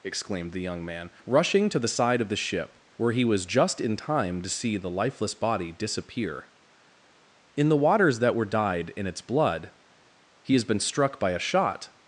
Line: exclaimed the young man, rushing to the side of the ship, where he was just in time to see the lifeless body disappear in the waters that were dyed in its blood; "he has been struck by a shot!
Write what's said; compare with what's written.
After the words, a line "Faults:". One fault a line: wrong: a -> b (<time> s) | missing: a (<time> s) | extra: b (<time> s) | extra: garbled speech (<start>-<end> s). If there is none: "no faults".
exclaimed the young man, rushing to the side of the ship, where he was just in time to see the lifeless body disappear in the waters that were dyed in its blood; "he has been struck by a shot!
Faults:
no faults